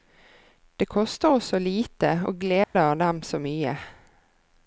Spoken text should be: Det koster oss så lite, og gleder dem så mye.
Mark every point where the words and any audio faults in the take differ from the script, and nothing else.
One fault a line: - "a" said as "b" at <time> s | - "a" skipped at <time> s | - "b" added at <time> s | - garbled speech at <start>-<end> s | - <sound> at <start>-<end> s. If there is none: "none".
- dropout at 2.6-2.7 s